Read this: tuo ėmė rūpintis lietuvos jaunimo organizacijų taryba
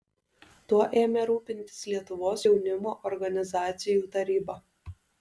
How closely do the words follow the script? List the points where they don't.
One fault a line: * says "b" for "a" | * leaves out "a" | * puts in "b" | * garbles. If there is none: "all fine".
all fine